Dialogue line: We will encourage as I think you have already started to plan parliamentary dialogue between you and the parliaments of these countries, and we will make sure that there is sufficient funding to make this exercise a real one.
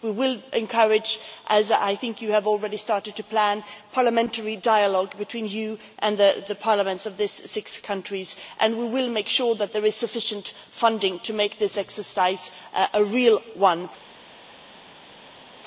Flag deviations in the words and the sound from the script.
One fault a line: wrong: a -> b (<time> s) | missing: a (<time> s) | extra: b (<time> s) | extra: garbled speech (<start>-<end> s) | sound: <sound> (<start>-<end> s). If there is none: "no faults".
extra: six (7.5 s)